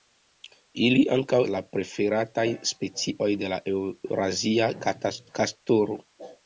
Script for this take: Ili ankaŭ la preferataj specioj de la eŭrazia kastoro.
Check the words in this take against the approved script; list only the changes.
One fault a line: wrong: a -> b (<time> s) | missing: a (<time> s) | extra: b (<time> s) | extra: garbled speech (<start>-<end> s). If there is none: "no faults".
no faults